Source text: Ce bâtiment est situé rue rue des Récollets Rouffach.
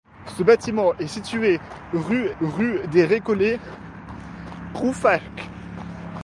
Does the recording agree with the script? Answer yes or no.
yes